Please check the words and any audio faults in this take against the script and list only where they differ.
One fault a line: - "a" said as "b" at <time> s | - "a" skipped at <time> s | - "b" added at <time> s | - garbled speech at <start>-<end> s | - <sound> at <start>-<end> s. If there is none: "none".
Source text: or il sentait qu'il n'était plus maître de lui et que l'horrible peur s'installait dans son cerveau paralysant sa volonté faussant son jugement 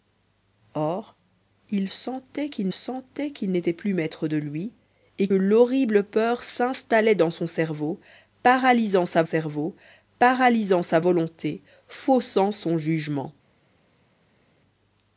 - "sentait qu'il" added at 2.7 s
- "que" skipped at 5.3 s
- "cerveau paralysant sa" added at 9.2 s